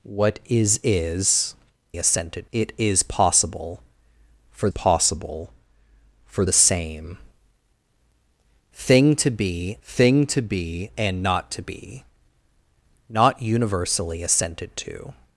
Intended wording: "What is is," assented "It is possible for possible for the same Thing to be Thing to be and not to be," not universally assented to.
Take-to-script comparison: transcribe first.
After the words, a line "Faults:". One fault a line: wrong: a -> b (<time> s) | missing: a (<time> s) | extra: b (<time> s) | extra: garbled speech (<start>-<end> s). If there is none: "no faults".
"What is is," assented "It is possible for possible for the same Thing to be Thing to be and not to be," not universally assented to.
Faults:
no faults